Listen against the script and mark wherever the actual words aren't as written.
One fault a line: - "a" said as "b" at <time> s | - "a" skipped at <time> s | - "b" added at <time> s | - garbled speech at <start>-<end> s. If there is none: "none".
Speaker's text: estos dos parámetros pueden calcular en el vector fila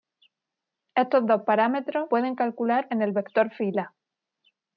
none